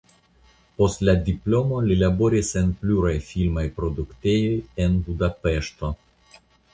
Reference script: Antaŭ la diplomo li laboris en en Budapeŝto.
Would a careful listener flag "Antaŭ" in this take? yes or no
yes